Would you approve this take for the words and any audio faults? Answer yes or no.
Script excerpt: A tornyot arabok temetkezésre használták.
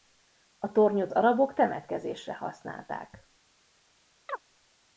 no